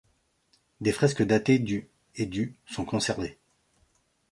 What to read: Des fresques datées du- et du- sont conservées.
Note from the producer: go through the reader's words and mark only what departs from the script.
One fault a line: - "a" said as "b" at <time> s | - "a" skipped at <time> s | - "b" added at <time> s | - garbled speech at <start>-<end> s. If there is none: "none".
none